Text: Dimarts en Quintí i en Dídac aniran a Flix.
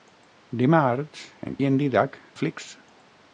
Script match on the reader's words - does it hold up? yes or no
no